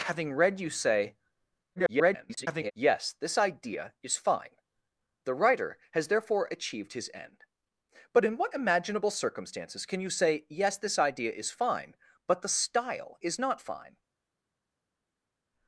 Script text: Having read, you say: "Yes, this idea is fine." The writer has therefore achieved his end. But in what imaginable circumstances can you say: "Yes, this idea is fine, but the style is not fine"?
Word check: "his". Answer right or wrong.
right